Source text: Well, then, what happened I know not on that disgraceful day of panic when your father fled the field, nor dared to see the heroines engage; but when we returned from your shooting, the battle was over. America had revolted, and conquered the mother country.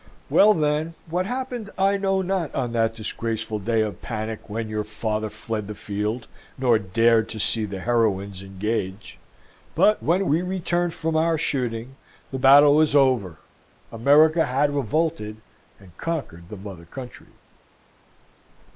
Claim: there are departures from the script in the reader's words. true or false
true